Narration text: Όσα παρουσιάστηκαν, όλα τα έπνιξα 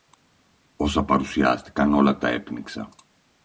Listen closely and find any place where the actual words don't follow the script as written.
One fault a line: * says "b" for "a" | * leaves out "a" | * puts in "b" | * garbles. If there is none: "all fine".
all fine